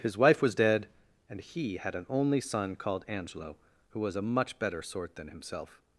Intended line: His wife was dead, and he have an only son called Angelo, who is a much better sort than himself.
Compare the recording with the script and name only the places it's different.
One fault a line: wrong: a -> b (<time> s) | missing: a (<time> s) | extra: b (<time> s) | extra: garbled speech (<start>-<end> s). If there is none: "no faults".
wrong: have -> had (1.8 s)
wrong: is -> was (4.0 s)